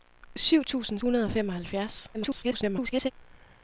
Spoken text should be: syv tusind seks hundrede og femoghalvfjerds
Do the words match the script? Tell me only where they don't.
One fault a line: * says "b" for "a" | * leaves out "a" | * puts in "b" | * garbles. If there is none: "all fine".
* leaves out "seks"
* garbles